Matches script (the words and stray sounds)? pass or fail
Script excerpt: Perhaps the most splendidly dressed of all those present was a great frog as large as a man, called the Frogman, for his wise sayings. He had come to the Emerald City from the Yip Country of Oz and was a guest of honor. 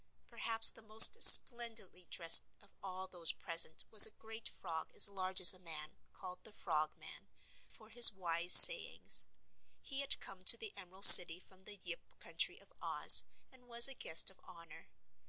pass